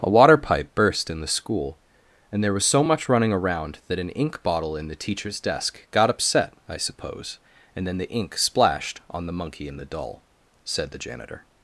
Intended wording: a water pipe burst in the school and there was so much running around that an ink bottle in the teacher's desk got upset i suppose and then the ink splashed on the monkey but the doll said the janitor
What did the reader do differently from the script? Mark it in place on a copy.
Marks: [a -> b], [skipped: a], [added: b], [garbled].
a water pipe burst in the school and there was so much running around that an ink bottle in the teacher's desk got upset i suppose and then the ink splashed on the monkey [but -> and] the doll said the janitor